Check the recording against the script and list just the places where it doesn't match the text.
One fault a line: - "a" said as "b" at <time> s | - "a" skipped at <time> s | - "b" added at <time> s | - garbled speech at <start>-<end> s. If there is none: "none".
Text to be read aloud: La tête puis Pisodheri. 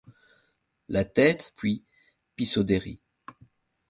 none